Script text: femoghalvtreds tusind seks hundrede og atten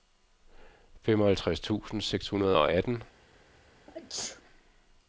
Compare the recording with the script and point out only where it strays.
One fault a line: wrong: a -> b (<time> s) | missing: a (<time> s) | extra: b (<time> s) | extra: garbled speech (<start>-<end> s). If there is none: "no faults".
no faults